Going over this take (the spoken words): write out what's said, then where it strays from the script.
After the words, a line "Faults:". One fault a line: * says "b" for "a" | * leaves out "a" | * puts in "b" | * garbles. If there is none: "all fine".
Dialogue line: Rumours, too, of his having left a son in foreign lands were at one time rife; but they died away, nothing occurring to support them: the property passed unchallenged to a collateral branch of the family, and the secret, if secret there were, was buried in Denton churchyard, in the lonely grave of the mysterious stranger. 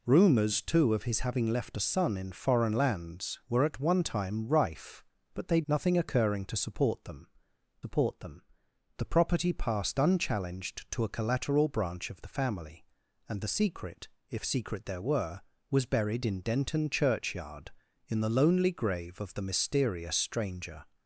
Rumours, too, of his having left a son in foreign lands were at one time rife; but they nothing occurring to support them support them: the property passed unchallenged to a collateral branch of the family, and the secret, if secret there were, was buried in Denton churchyard, in the lonely grave of the mysterious stranger.
Faults:
* leaves out "died away"
* puts in "support them"